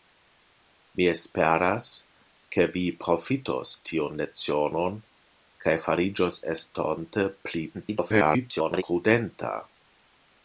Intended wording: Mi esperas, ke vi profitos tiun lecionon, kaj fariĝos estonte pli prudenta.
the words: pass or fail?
fail